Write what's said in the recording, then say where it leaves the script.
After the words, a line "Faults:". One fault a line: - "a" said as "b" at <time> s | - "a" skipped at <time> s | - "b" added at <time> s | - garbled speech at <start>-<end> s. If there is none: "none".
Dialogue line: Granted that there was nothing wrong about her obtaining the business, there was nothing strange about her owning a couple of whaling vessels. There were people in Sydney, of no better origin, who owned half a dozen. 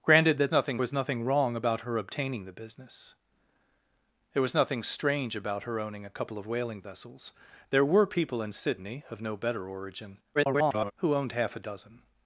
Granted that nothing was nothing wrong about her obtaining the business, there was nothing strange about her owning a couple of whaling vessels. There were people in Sydney, of no better origin, [garbled] who owned half a dozen.
Faults:
- "there" said as "nothing" at 0.5 s
- garbled speech at 10.3-10.9 s